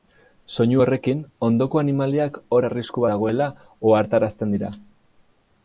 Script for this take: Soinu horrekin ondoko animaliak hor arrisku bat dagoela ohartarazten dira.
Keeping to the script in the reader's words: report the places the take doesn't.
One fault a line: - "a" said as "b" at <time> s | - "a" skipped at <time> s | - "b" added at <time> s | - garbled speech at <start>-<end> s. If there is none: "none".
- "bat" skipped at 3.1 s